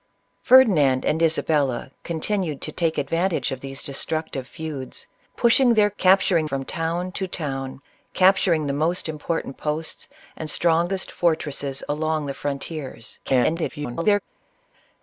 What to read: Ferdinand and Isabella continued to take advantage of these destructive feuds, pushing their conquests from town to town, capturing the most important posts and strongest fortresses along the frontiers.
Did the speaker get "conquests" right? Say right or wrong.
wrong